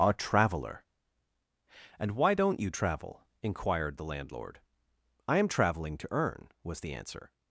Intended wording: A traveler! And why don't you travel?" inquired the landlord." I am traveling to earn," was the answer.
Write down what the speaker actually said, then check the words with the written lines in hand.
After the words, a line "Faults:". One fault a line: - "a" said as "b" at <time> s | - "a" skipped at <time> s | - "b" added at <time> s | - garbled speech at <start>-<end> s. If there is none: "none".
A traveler! And why don't you travel?" inquired the landlord." I am traveling to earn," was the answer.
Faults:
none